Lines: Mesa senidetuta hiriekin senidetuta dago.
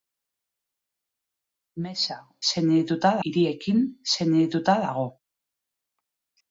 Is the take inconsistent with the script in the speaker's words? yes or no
no